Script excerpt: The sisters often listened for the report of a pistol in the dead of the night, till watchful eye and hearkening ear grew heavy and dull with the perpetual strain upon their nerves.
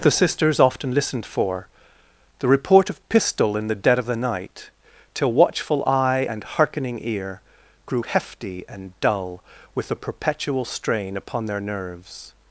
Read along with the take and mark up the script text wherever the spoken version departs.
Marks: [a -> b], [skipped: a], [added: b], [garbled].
The sisters often listened for the report of [skipped: a] pistol in the dead of the night, till watchful eye and hearkening ear grew [heavy -> hefty] and dull with the perpetual strain upon their nerves.